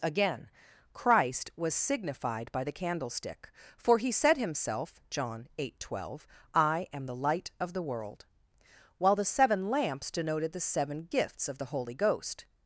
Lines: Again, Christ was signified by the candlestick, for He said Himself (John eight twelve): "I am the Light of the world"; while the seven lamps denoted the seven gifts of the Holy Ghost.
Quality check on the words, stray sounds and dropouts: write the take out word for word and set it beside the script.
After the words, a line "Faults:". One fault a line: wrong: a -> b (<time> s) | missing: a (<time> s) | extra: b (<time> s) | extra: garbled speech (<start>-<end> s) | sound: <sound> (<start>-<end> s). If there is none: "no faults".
Again, Christ was signified by the candlestick, for He said Himself (John eight twelve): "I am the Light of the world"; while the seven lamps denoted the seven gifts of the Holy Ghost.
Faults:
no faults